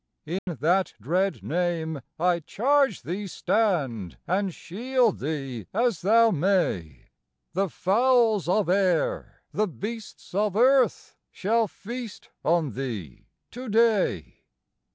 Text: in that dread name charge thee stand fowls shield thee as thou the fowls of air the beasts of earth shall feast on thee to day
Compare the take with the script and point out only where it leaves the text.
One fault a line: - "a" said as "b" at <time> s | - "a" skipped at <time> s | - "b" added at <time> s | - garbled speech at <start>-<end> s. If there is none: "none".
- "i" added at 2.2 s
- "fowls" said as "and" at 4.3 s
- "may" added at 6.3 s